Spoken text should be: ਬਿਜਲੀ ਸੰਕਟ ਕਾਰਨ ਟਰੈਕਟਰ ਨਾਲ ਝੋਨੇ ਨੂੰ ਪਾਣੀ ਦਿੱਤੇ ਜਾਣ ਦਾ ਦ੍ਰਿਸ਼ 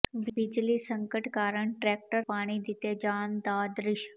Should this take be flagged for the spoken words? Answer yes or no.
yes